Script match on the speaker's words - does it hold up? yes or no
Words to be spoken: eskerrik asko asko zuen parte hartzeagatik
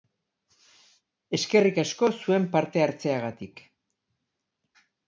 no